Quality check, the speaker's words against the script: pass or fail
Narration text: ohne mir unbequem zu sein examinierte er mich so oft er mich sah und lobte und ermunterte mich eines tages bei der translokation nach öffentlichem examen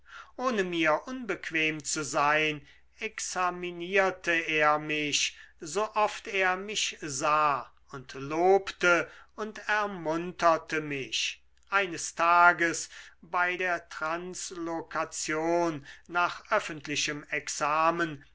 pass